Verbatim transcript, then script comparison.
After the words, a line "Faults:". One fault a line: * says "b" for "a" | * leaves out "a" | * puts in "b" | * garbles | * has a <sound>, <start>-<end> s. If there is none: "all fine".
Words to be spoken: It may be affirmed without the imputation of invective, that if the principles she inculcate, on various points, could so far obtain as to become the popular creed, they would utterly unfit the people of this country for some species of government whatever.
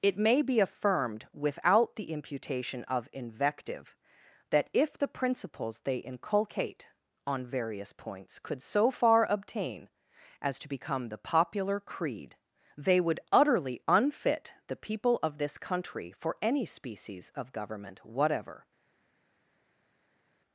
It may be affirmed without the imputation of invective, that if the principles they inculcate, on various points, could so far obtain as to become the popular creed, they would utterly unfit the people of this country for any species of government whatever.
Faults:
* says "they" for "she"
* says "any" for "some"